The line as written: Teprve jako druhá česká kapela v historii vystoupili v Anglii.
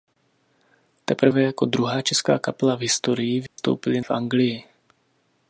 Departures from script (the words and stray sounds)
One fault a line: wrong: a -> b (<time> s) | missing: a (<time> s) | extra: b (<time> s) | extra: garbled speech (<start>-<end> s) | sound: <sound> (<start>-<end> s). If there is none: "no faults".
sound: dropout (3.5-3.6 s)